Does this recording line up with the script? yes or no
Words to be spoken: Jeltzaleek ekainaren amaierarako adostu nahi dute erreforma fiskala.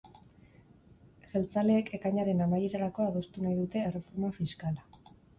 yes